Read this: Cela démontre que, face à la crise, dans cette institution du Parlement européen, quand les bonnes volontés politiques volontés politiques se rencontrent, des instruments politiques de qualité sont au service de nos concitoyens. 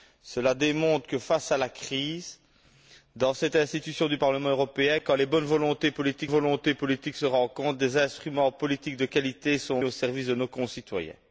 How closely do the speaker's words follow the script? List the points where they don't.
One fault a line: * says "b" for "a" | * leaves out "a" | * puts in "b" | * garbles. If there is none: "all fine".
all fine